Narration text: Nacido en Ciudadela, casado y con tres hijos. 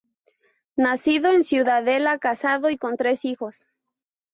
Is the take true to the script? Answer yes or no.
yes